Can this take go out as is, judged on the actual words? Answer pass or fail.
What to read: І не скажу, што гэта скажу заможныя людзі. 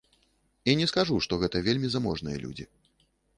fail